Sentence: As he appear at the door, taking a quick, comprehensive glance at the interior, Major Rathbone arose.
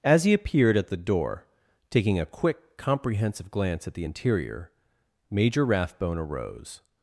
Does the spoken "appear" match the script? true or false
false